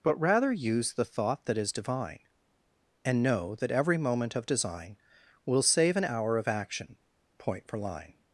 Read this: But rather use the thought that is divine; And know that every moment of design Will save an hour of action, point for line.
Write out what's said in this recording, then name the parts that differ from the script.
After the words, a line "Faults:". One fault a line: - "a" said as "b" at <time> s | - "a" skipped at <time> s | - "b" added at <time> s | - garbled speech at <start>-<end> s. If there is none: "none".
But rather use the thought that is divine; And know that every moment of design Will save an hour of action, point for line.
Faults:
none